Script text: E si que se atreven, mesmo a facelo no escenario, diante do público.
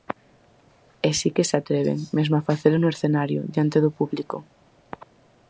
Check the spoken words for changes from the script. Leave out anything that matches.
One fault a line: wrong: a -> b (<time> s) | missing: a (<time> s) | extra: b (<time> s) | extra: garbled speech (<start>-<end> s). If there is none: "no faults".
no faults